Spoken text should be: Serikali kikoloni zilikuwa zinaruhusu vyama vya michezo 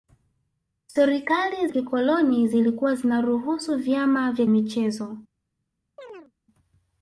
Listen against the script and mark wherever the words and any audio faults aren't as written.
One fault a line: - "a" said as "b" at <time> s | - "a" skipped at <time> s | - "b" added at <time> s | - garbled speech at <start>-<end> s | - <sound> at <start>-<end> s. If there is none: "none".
- chirp at 6.0-6.3 s